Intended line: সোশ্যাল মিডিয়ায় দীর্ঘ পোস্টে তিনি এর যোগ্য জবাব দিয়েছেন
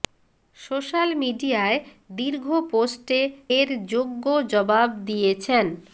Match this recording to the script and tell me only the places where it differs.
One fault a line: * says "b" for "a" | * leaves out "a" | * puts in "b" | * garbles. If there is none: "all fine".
* leaves out "তিনি"